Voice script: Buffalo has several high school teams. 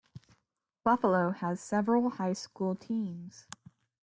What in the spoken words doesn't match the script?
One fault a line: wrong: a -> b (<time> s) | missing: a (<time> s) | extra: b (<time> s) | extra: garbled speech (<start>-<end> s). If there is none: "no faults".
no faults